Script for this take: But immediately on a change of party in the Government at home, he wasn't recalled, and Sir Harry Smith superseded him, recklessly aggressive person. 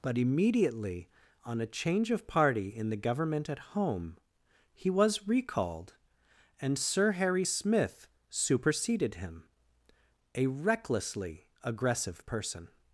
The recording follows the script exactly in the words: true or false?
false